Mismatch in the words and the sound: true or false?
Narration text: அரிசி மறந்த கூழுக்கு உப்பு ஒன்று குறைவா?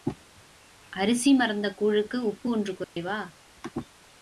true